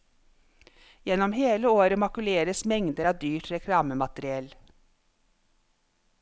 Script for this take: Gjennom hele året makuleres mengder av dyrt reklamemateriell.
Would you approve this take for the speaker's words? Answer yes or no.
yes